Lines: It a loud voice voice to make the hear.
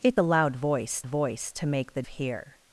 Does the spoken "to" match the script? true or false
true